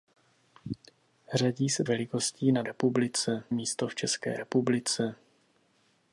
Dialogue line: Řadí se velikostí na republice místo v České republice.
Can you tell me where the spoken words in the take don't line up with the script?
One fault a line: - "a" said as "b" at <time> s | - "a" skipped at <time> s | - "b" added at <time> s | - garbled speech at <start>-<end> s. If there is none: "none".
none